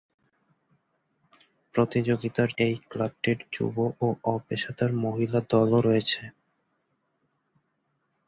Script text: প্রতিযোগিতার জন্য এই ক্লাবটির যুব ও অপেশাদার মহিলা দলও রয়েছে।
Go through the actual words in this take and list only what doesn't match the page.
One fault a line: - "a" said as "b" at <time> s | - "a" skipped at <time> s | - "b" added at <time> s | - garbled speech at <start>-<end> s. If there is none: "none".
- "জন্য" skipped at 2.5 s